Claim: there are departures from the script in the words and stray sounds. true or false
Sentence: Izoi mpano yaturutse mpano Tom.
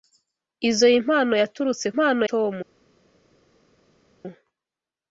false